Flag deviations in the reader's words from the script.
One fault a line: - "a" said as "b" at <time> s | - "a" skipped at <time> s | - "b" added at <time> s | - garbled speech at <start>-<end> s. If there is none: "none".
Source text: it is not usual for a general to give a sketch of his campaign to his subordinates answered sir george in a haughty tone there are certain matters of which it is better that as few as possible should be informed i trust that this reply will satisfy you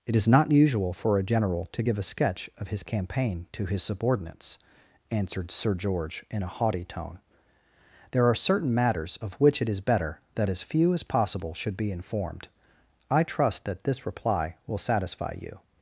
none